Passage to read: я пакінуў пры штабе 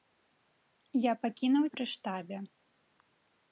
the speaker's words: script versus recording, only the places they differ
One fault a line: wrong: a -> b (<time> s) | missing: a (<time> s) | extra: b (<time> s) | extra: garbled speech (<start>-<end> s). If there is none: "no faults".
no faults